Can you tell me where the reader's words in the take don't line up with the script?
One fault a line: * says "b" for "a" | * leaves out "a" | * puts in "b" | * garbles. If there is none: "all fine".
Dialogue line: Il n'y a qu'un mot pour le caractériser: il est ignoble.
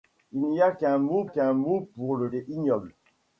* puts in "qu'un mot"
* leaves out "caractériser il"